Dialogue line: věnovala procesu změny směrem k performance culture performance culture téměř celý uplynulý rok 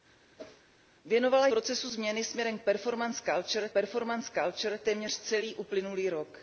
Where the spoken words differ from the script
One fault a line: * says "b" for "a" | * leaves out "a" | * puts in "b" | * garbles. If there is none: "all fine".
all fine